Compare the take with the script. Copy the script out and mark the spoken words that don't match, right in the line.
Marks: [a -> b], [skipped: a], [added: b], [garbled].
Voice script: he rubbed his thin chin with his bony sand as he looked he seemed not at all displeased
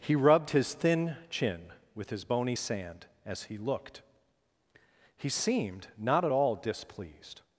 he rubbed his thin chin with his bony sand as he looked he seemed not at all displeased